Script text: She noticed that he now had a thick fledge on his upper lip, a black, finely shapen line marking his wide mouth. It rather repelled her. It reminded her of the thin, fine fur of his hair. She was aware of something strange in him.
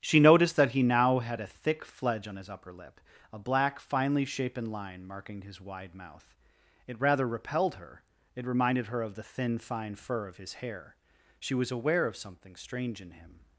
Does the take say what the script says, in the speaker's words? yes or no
yes